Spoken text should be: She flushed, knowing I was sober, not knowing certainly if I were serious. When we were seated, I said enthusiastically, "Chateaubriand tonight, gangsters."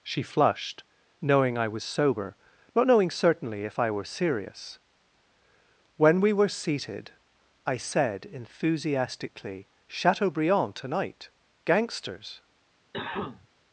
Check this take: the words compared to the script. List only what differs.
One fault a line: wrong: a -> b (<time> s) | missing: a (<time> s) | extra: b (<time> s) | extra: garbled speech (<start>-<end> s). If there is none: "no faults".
no faults